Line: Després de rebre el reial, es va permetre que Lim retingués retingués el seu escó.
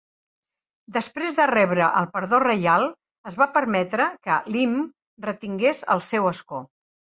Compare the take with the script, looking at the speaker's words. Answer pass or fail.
fail